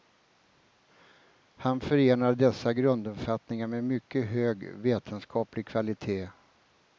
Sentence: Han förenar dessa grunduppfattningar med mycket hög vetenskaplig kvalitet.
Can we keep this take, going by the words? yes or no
yes